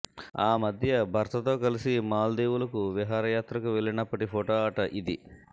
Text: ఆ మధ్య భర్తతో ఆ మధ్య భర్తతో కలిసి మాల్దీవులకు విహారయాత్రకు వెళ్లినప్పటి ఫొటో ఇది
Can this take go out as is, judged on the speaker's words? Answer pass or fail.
fail